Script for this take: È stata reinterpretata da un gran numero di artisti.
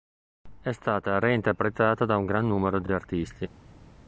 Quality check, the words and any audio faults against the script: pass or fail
fail